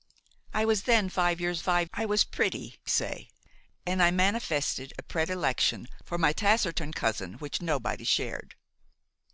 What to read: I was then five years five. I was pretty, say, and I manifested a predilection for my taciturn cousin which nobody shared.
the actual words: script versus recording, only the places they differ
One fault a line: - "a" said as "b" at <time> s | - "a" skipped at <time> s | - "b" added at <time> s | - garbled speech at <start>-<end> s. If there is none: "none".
none